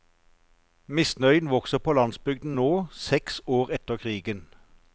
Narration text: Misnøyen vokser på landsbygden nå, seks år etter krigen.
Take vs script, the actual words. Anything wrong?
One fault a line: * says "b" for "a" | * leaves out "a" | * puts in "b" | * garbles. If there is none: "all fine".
all fine